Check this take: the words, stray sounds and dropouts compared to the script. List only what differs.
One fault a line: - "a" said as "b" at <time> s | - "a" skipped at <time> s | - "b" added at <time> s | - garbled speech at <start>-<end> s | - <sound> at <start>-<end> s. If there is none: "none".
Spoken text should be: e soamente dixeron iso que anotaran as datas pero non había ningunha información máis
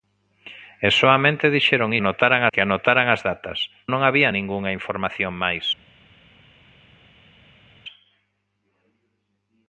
- "iso" said as "anotaran" at 2.0 s
- "pero" skipped at 3.6 s